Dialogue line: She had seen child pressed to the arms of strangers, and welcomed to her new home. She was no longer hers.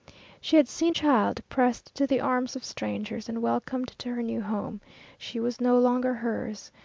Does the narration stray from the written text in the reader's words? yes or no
no